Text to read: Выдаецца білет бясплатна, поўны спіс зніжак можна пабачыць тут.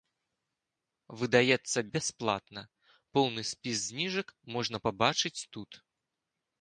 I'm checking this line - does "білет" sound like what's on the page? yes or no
no